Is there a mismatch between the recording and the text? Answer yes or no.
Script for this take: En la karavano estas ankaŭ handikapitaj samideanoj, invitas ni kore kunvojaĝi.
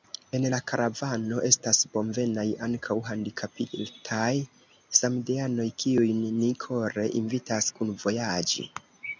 yes